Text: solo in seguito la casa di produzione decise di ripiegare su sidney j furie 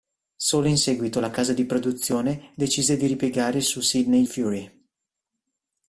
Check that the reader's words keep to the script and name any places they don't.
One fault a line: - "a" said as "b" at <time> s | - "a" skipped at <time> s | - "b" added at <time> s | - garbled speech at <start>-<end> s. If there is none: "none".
- "j" skipped at 4.2 s